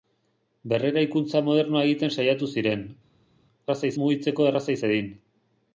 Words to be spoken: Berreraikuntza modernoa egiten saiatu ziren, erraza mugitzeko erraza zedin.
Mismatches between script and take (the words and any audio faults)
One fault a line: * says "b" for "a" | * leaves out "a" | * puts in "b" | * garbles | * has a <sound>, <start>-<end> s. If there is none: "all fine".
all fine